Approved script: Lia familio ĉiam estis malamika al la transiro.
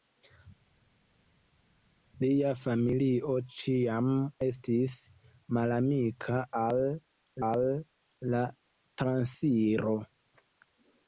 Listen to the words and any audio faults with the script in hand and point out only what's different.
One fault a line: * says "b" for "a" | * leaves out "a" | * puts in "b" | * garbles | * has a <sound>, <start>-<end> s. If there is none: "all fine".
* puts in "al"